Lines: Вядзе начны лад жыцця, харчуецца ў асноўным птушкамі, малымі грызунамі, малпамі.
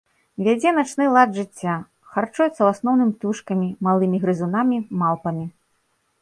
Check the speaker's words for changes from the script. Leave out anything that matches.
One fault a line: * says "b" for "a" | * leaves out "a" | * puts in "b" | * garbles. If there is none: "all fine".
all fine